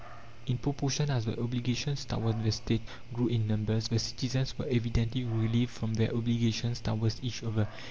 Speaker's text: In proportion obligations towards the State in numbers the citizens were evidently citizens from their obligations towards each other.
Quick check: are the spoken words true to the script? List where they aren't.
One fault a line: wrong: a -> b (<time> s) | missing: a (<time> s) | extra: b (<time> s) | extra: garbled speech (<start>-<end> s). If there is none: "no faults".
extra: as the (1.1 s)
extra: grew (3.1 s)
wrong: citizens -> relieved (5.2 s)